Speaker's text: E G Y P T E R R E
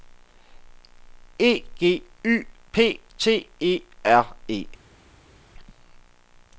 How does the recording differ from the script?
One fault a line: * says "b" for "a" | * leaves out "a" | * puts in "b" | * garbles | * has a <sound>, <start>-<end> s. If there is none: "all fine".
* leaves out "R"